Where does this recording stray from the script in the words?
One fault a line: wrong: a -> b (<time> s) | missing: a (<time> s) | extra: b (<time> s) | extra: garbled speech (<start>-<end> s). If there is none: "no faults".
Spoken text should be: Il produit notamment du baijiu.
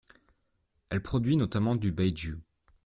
wrong: Il -> Elle (0.9 s)